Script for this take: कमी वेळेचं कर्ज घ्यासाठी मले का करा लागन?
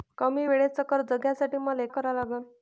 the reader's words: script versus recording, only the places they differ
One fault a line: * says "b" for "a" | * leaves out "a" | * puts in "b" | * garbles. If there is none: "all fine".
* leaves out "का"